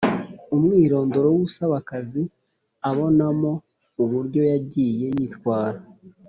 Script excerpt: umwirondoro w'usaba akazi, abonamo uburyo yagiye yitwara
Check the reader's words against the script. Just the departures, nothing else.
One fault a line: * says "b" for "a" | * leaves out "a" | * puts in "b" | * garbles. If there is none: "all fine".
all fine